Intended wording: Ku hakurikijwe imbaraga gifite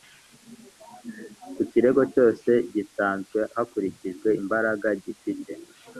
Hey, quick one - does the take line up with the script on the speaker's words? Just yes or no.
no